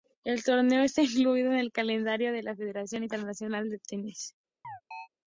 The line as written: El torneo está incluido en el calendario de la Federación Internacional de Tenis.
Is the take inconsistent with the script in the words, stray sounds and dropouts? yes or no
yes